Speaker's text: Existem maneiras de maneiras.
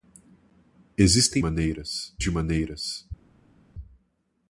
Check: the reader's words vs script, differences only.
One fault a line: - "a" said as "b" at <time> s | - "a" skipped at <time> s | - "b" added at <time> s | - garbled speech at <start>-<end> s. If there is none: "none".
none